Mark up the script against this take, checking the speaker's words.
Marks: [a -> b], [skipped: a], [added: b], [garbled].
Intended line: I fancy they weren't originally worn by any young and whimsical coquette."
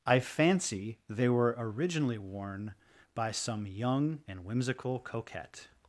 I fancy they [weren't -> were] originally worn by [any -> some] young and whimsical coquette."